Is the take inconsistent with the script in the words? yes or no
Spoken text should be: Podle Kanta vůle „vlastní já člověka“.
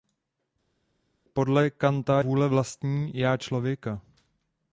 no